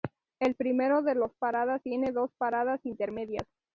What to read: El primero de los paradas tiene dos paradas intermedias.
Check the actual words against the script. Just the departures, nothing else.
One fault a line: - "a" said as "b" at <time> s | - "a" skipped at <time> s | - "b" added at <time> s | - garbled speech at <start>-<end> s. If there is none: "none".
none